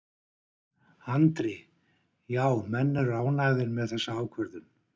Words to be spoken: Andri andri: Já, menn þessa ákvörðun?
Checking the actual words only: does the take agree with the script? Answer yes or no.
no